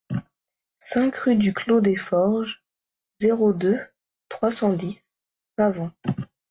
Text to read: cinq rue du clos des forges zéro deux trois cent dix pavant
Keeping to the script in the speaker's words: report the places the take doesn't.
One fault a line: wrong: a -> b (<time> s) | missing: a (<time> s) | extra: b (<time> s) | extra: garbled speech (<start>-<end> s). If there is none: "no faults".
no faults